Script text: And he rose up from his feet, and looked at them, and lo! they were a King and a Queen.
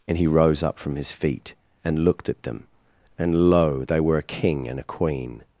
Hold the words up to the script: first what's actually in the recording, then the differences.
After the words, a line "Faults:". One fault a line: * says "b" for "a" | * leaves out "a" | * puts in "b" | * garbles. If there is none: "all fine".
And he rose up from his feet, and looked at them, and lo! they were a King and a Queen.
Faults:
all fine